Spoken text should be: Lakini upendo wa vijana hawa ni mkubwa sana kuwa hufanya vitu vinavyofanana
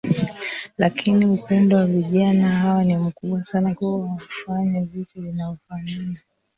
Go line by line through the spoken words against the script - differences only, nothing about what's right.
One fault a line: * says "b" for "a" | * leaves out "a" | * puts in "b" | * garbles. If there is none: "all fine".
all fine